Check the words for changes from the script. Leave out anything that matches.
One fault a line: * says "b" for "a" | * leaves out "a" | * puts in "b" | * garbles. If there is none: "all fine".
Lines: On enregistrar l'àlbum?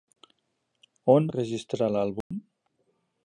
all fine